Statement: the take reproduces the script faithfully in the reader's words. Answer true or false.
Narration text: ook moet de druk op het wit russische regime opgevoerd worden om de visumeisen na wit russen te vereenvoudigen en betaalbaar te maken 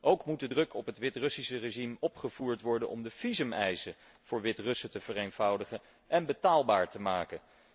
false